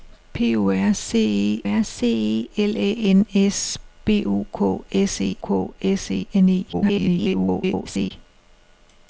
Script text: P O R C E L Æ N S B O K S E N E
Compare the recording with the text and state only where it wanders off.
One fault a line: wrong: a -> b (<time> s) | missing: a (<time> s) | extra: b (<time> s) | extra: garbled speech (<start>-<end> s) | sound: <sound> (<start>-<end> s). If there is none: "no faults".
extra: R C (1.6 s)
extra: K S E (5.4 s)
extra: garbled speech (6.7-8.1 s)